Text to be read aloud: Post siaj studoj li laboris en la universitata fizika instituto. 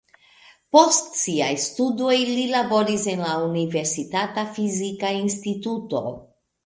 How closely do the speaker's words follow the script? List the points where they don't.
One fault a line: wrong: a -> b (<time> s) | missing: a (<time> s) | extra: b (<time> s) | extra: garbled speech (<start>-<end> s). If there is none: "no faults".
no faults